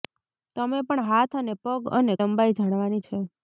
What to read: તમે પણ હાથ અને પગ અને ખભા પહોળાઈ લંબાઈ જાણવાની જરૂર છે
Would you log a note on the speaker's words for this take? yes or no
yes